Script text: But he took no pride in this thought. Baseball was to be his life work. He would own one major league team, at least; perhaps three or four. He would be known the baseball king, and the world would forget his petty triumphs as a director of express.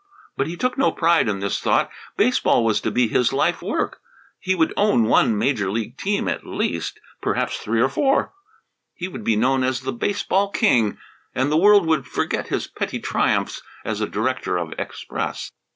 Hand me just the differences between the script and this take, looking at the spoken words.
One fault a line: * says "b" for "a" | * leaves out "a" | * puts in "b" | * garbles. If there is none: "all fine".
* puts in "as"